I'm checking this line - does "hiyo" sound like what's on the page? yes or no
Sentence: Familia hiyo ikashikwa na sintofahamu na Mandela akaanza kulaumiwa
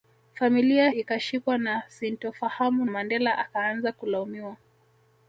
no